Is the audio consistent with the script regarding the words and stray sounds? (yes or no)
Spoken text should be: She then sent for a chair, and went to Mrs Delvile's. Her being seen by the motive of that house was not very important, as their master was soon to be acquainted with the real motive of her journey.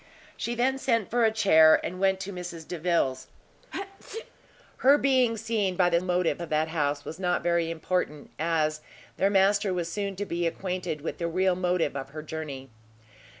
no